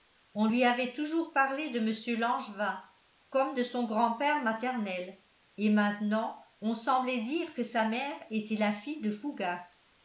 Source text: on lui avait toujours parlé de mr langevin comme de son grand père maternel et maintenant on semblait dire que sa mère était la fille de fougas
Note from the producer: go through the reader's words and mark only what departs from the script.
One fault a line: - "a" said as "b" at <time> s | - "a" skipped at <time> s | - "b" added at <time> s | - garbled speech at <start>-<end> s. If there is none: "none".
none